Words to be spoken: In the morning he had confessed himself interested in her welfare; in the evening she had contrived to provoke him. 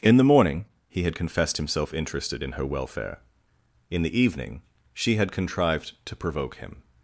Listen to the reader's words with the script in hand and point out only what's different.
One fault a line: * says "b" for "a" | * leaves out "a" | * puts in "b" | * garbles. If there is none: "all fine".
all fine